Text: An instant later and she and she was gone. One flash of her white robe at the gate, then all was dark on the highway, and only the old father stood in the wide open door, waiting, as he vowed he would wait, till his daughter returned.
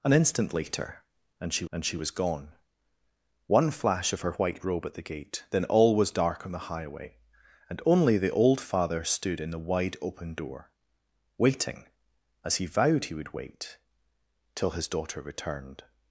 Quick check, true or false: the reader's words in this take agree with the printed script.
true